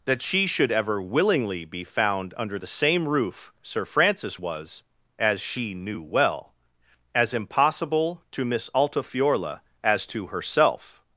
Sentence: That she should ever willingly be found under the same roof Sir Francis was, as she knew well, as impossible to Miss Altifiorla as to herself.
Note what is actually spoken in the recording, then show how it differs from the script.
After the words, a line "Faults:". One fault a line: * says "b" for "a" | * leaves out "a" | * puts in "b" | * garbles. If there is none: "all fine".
That she should ever willingly be found under the same roof Sir Francis was, as she knew well, as impossible to Miss Altifiorla as to herself.
Faults:
all fine